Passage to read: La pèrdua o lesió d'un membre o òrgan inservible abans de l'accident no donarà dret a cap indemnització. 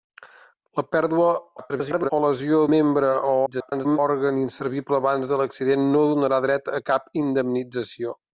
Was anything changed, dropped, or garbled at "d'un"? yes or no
yes